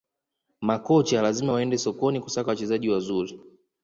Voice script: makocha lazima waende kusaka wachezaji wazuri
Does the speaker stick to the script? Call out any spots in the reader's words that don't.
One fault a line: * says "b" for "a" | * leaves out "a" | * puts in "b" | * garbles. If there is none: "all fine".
* puts in "sokoni"